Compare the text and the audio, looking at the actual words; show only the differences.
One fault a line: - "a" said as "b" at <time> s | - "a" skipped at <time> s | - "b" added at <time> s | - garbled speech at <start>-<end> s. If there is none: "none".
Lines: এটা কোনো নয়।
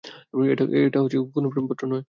- "প্রেমপত্র" added at 1.5 s